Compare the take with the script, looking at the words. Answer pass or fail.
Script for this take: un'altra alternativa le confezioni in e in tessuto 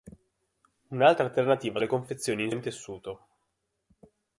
pass